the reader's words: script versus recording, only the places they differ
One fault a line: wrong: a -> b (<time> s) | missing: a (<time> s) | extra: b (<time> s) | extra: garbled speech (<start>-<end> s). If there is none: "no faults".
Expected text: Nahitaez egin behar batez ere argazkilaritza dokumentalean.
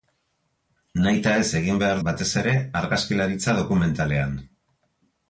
no faults